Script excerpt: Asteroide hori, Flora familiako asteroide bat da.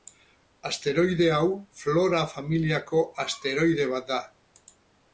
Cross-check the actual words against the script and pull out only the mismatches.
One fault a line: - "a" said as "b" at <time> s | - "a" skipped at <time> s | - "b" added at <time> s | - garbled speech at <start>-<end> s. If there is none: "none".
- "hori" said as "hau" at 1.4 s